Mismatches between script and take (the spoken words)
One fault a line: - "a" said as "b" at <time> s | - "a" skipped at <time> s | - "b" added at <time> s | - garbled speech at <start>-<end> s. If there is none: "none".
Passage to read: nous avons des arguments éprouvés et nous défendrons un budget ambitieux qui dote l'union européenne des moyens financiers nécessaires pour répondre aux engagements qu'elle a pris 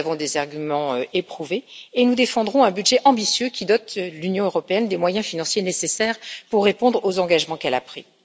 none